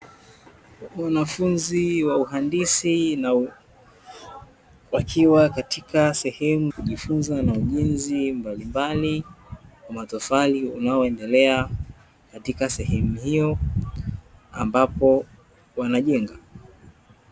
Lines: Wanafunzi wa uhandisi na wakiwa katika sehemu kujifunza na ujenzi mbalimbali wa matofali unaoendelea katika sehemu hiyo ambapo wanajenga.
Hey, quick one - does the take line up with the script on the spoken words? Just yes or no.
yes